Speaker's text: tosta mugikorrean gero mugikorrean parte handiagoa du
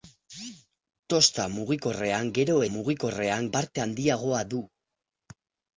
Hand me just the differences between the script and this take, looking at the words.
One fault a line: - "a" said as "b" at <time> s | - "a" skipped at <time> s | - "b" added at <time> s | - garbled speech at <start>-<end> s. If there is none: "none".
none